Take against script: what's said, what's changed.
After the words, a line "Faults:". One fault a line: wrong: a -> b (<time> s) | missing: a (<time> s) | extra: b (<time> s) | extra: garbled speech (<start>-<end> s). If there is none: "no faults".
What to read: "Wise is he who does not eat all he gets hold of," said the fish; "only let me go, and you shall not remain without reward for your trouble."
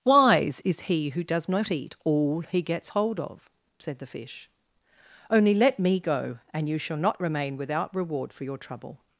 "Wise is he who does not eat all he gets hold of," said the fish; "only let me go, and you shall not remain without reward for your trouble."
Faults:
no faults